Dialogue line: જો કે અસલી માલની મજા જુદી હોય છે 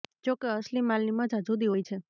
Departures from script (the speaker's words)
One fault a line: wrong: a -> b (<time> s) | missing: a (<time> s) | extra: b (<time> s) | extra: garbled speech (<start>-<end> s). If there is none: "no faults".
no faults